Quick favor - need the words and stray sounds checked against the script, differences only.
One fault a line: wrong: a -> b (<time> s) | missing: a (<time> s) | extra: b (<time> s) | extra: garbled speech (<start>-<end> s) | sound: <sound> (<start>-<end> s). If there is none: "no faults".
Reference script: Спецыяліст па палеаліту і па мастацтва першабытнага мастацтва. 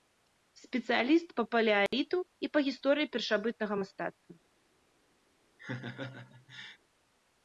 sound: dropout (1.9-1.9 s)
wrong: мастацтва -> гісторыі (2.7 s)
sound: laugh (5.6-6.8 s)